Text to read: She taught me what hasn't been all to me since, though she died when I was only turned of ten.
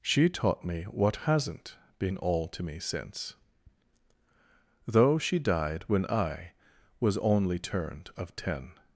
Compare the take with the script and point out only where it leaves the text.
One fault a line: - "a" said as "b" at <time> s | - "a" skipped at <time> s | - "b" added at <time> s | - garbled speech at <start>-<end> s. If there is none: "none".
none